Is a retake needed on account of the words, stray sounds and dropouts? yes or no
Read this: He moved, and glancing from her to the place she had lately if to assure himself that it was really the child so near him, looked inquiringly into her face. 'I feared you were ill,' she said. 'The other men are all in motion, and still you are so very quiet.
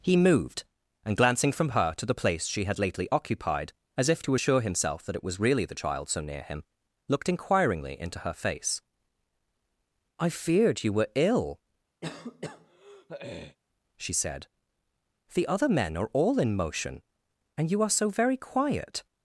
yes